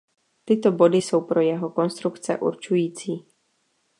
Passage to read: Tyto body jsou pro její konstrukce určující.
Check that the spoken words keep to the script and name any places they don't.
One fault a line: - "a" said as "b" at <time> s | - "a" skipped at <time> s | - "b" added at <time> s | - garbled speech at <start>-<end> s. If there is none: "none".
- "její" said as "jeho" at 1.4 s